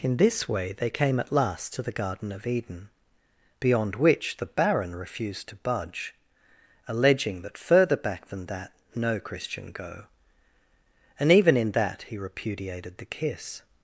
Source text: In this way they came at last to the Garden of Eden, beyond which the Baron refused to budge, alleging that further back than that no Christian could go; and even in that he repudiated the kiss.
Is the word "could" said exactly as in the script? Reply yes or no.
no